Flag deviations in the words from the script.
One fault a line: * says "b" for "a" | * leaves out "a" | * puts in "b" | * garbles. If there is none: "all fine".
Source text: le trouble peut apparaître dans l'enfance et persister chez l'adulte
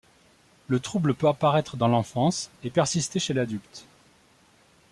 all fine